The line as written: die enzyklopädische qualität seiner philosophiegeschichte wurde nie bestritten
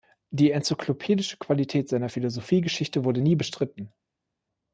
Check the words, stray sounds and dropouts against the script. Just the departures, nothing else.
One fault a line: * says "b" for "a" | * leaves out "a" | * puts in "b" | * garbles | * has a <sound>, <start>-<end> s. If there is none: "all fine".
all fine